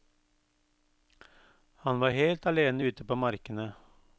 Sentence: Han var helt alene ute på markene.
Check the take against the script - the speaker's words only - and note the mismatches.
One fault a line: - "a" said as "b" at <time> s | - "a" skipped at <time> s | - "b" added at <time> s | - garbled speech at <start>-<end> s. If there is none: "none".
none